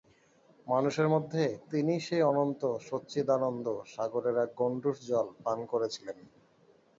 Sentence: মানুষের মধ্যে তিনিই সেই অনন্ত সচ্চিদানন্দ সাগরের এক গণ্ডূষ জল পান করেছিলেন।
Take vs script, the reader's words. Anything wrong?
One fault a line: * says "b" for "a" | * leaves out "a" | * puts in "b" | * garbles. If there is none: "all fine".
all fine